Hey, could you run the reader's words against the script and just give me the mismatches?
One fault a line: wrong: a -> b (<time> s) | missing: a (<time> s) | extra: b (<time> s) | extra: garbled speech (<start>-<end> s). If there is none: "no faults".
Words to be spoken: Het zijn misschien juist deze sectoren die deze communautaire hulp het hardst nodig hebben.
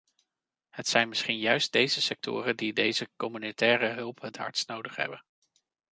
no faults